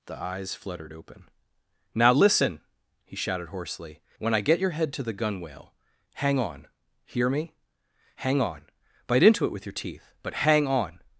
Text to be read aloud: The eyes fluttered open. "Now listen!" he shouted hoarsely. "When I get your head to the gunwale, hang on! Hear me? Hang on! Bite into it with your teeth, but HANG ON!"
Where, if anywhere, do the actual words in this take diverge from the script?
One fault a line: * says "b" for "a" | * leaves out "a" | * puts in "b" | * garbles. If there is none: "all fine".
all fine